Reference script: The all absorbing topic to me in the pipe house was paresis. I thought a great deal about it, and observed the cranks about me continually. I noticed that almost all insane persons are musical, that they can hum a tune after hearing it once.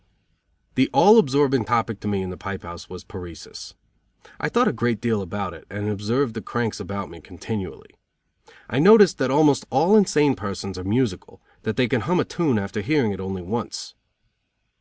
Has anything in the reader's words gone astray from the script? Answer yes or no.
yes